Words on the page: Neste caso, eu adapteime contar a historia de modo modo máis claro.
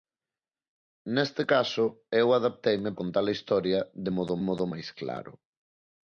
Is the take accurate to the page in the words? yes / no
yes